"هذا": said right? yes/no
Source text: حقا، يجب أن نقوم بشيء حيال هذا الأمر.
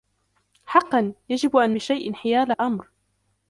no